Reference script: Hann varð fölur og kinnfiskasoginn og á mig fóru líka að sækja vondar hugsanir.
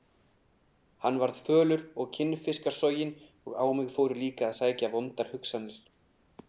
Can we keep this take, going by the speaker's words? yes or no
yes